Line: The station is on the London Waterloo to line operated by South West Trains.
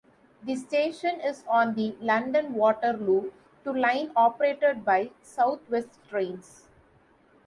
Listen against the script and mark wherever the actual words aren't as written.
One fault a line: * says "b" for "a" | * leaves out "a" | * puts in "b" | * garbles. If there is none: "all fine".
all fine